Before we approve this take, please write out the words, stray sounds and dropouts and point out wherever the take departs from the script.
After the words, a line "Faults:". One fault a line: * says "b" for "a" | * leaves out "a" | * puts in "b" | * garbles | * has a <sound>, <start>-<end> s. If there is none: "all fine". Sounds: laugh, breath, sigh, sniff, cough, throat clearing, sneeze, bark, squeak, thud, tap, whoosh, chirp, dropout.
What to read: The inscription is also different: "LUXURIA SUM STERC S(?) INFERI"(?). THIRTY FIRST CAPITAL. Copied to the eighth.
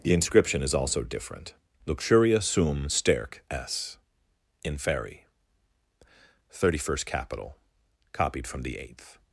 The inscription is also different: "LUXURIA SUM STERC S(?) INFERI"(?). THIRTY FIRST CAPITAL. Copied from the eighth.
Faults:
* says "from" for "to"